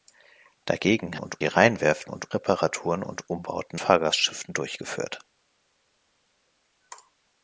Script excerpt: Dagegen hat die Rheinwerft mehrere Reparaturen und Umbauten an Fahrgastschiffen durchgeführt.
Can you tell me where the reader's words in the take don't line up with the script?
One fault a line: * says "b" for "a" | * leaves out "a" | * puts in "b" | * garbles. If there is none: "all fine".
* says "und" for "hat"
* says "und" for "mehrere"
* leaves out "an"